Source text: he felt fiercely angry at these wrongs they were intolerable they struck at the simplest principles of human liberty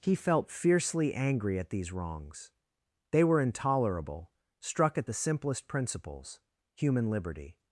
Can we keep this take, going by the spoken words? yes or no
no